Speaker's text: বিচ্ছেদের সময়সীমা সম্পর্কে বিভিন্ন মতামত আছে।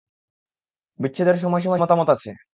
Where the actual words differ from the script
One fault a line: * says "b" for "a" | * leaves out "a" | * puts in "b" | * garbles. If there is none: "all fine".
* leaves out "সম্পর্কে বিভিন্ন"